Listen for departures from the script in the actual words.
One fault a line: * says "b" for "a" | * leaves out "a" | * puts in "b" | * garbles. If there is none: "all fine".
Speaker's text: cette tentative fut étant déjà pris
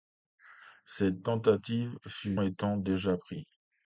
all fine